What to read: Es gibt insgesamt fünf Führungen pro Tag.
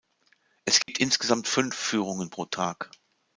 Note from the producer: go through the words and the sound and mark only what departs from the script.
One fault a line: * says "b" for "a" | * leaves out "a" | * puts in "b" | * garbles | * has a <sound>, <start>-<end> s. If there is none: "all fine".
* has a dropout, 0.8-0.9 s